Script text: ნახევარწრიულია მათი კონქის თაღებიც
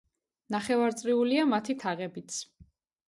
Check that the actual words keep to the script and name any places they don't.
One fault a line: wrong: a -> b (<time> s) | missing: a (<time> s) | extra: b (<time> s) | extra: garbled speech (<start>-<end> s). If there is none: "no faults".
missing: კონქის (1.8 s)